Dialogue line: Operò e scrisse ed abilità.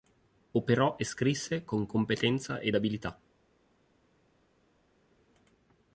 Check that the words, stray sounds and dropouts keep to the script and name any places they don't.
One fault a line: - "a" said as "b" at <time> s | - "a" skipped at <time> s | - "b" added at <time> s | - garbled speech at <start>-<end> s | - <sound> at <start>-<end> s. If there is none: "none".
- "con competenza" added at 1.6 s